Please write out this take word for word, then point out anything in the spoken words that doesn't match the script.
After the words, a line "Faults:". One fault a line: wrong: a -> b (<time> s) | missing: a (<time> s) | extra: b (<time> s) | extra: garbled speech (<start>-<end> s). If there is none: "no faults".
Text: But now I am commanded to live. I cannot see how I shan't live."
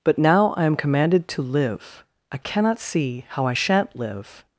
But now I am commanded to live. I cannot see how I shan't live."
Faults:
no faults